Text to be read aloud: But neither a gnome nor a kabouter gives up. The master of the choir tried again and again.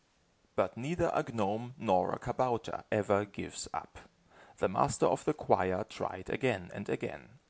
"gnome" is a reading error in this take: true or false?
false